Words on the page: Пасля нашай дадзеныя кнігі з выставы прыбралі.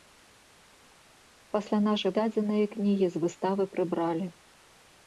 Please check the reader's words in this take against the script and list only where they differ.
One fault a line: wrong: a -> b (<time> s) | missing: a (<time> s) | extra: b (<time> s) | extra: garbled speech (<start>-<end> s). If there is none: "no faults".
no faults